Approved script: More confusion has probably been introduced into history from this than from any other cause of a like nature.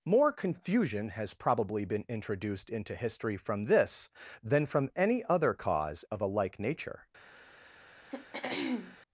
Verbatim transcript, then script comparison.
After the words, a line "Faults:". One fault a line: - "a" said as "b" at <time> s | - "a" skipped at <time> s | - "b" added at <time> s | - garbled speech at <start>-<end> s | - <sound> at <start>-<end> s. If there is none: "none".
More confusion has probably been introduced into history from this than from any other cause of a like nature.
Faults:
- throat clearing at 8.1-9.0 s